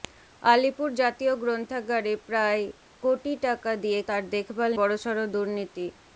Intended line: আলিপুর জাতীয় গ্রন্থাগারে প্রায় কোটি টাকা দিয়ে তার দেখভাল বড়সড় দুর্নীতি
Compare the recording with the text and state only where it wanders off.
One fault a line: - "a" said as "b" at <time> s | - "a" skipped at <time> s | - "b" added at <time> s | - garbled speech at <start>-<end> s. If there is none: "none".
none